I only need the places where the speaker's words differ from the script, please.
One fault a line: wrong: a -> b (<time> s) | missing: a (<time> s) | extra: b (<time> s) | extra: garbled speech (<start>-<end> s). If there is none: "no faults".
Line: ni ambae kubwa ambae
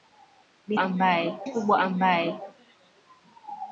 no faults